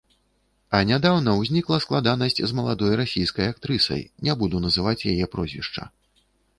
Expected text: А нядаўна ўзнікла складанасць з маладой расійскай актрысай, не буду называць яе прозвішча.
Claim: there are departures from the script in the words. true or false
false